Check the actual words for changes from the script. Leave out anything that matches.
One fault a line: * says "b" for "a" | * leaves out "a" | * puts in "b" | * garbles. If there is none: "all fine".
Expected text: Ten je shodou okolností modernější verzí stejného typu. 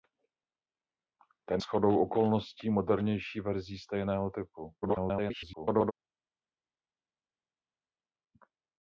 * leaves out "je"
* garbles